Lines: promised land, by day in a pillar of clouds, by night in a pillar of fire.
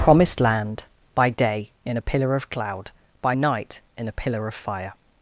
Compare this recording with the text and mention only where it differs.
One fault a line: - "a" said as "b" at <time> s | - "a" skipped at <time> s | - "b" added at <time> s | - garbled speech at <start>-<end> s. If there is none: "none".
- "clouds" said as "cloud" at 2.5 s